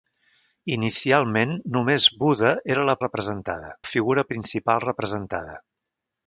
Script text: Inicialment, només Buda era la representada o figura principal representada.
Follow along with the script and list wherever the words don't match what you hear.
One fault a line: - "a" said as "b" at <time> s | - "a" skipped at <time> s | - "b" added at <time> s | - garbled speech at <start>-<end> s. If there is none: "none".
none